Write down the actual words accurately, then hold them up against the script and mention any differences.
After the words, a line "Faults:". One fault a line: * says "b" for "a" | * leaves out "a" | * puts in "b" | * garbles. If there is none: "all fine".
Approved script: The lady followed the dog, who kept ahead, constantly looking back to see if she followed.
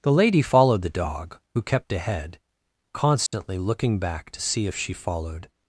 The lady followed the dog, who kept ahead, constantly looking back to see if she followed.
Faults:
all fine